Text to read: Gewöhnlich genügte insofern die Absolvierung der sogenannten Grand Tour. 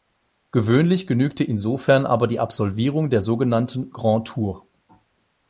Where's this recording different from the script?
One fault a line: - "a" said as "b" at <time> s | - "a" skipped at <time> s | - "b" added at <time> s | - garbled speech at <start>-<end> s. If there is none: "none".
- "aber" added at 2.1 s